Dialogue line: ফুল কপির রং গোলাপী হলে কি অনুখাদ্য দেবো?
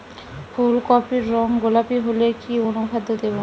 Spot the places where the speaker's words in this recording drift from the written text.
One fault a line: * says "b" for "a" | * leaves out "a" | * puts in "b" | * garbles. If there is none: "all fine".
all fine